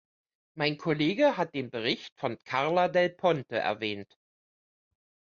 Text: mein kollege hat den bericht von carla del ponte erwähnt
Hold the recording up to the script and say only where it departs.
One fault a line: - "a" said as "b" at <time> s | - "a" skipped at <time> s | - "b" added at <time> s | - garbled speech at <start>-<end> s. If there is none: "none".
none